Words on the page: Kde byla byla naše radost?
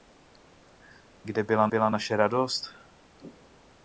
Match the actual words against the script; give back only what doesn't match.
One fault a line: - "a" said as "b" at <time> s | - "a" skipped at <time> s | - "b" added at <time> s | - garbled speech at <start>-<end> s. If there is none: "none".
none